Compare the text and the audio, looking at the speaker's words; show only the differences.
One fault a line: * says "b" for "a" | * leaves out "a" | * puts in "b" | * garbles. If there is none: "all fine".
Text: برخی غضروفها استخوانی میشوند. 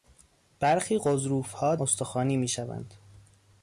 all fine